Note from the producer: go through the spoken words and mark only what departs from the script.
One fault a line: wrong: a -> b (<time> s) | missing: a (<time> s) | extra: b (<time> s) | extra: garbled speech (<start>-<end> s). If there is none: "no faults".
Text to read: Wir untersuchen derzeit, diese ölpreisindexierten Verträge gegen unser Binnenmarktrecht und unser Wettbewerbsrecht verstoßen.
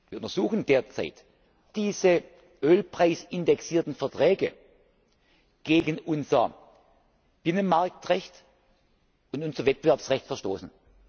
no faults